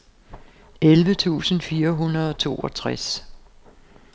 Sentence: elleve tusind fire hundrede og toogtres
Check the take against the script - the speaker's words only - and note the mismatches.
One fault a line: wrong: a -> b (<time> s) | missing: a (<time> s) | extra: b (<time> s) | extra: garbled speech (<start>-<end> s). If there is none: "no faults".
no faults